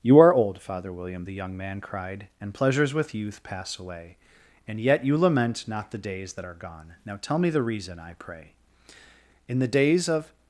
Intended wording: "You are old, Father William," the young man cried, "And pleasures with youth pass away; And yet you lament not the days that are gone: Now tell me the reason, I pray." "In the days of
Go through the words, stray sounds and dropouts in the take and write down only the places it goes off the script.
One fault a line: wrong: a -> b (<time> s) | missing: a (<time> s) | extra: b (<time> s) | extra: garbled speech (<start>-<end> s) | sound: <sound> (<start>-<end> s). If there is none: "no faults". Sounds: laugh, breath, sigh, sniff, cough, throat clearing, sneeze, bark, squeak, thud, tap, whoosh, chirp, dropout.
no faults